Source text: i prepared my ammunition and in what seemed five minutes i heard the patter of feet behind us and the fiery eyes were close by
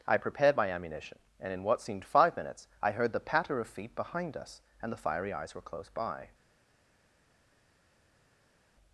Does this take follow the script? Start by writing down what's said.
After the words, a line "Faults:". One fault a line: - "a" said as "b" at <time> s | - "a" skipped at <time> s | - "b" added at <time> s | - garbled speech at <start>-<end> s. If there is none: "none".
i prepared my ammunition and in what seemed five minutes i heard the patter of feet behind us and the fiery eyes were close by
Faults:
none